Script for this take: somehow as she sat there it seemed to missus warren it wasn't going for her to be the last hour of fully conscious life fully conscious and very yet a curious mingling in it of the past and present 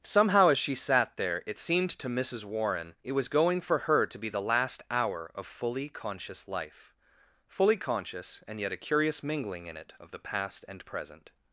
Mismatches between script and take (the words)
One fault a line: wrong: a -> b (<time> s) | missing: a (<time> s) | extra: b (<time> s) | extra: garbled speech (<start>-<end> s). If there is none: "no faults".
wrong: wasn't -> was (3.1 s)
missing: very (8.6 s)